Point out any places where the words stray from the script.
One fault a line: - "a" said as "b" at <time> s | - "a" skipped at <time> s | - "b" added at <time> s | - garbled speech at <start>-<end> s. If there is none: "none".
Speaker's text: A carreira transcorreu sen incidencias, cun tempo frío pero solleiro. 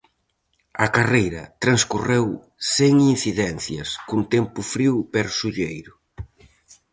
none